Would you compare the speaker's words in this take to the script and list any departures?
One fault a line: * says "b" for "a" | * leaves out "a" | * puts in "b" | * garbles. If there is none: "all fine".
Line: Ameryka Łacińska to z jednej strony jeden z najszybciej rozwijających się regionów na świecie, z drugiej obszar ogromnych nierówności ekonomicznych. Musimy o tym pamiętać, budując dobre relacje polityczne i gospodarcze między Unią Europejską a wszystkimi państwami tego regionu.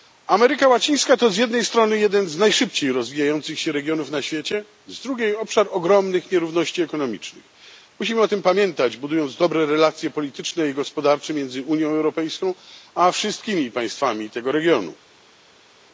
all fine